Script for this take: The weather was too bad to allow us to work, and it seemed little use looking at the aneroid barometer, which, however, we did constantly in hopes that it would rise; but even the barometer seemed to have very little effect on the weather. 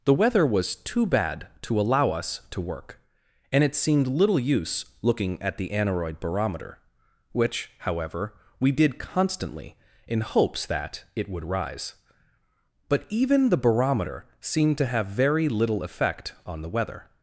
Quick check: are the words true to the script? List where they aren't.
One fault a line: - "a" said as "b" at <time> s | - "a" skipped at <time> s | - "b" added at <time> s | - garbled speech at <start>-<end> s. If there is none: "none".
none